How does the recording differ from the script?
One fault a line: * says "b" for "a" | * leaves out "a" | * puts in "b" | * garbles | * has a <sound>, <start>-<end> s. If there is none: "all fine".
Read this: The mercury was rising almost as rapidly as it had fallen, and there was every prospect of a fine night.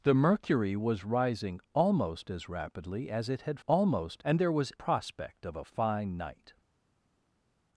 * says "almost" for "fallen"
* leaves out "every"